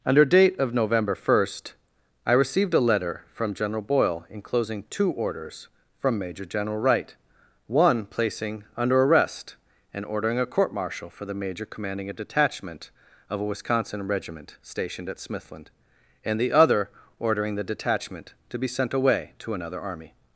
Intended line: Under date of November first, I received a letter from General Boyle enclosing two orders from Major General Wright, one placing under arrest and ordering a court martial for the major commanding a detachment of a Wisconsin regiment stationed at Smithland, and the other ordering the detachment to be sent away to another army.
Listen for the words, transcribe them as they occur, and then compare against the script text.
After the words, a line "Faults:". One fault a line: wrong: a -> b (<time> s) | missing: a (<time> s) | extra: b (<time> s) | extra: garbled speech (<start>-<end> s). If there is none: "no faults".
Under date of November first, I received a letter from General Boyle enclosing two orders from Major General Wright, one placing under arrest and ordering a court martial for the major commanding a detachment of a Wisconsin regiment stationed at Smithland, and the other ordering the detachment to be sent away to another army.
Faults:
no faults